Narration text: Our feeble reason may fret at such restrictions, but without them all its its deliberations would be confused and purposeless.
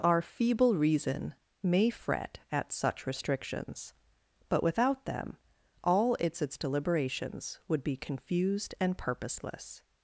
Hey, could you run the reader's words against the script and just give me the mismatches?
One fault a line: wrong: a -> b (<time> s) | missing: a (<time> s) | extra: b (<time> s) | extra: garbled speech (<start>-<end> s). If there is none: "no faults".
no faults